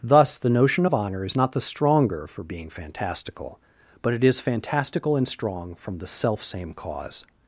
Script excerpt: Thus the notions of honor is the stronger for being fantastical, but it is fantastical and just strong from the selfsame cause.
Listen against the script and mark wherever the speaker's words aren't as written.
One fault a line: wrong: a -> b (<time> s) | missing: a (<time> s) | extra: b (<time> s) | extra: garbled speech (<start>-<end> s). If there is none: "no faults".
wrong: notions -> notion (0.5 s)
extra: not (1.3 s)
missing: just (5.3 s)